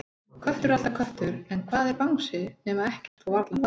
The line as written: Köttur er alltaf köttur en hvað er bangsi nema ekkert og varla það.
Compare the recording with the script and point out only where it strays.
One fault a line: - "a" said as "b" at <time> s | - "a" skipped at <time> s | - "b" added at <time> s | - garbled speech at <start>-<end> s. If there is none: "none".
none